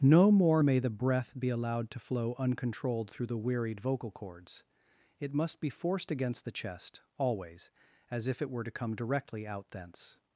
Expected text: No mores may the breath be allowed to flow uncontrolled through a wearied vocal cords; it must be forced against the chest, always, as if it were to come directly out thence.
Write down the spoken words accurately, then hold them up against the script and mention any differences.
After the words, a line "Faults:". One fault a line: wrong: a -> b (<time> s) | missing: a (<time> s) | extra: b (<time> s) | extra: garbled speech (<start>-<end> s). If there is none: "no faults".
No more may the breath be allowed to flow uncontrolled through the wearied vocal cords; it must be forced against the chest, always, as if it were to come directly out thence.
Faults:
wrong: mores -> more (0.3 s)
wrong: a -> the (3.3 s)